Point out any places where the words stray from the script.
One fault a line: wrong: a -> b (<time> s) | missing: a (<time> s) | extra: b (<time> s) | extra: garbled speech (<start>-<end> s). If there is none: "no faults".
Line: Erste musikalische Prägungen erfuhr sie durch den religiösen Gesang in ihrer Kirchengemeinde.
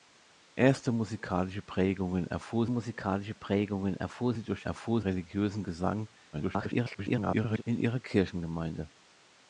extra: musikalische Prägungen erfuhr (2.7 s)
wrong: den -> erfuhr (4.6 s)
extra: garbled speech (6.3-7.6 s)